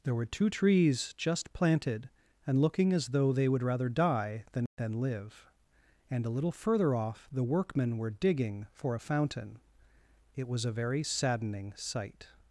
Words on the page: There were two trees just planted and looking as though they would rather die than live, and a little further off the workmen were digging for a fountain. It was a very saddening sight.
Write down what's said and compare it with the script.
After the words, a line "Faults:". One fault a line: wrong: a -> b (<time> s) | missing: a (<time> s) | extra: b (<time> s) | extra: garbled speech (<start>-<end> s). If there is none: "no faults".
There were two trees just planted and looking as though they would rather die than than live, and a little further off the workmen were digging for a fountain. It was a very saddening sight.
Faults:
extra: than (4.8 s)